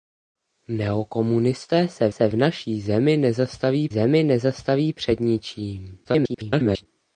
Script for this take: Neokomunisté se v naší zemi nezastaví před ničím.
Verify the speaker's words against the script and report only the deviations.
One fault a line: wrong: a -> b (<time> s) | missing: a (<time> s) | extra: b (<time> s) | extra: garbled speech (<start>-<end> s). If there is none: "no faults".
extra: se (2.1 s)
extra: zemi nezastaví (3.9 s)
extra: garbled speech (6.0-6.9 s)